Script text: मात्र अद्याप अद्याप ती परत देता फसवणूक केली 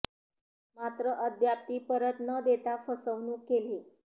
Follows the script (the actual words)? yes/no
no